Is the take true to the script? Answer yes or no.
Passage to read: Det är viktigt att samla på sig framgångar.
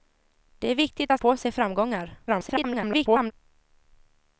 no